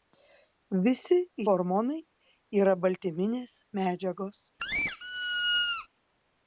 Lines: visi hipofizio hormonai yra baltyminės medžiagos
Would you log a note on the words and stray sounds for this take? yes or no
yes